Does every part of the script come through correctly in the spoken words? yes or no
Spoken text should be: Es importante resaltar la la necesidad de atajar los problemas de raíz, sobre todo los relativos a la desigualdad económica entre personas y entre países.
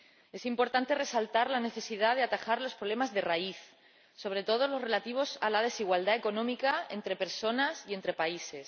no